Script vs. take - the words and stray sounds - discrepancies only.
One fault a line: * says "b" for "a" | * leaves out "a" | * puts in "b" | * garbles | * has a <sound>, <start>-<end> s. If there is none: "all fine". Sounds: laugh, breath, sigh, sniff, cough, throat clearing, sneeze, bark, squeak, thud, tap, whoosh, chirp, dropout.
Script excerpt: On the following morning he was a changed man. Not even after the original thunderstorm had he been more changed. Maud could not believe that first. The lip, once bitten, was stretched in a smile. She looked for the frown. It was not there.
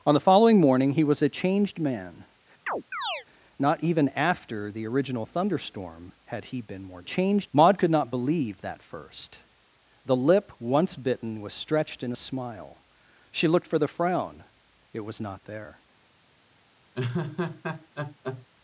* has a chirp, 2.7-3.3 s
* has a laugh, 16.9-18.5 s